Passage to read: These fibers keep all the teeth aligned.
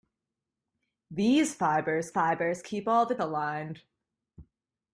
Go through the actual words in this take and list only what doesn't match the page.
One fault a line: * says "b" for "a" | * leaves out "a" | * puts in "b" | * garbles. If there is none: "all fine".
* puts in "fibers"
* leaves out "teeth"